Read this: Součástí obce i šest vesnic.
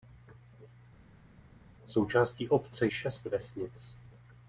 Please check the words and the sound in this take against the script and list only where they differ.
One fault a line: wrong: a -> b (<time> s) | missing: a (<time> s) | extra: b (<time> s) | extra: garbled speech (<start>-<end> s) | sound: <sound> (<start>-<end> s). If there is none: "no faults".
no faults